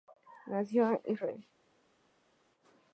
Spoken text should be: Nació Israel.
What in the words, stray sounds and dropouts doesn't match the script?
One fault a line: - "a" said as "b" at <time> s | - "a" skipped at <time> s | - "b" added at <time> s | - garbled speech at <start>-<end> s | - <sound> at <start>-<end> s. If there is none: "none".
none